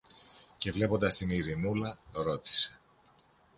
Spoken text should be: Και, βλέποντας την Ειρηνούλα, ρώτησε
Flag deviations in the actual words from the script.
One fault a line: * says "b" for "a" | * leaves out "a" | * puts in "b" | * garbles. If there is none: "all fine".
all fine